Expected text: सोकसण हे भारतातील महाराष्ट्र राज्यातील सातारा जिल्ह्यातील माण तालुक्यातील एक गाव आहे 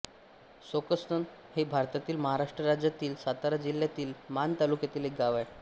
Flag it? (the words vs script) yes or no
no